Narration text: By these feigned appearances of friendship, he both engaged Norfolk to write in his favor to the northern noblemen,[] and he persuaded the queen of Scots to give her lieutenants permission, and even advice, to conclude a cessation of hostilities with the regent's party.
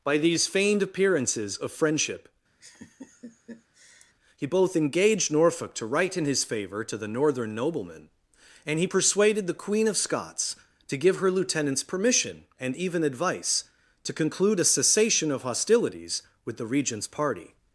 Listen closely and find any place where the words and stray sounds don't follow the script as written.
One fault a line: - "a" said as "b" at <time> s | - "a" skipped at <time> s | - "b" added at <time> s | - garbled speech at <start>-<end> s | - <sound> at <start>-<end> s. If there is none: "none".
- laugh at 2.6-4.1 s